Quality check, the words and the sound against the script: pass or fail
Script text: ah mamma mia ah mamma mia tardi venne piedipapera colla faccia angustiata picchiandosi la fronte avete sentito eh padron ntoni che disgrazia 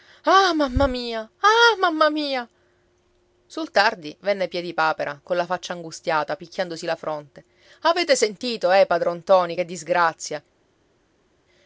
fail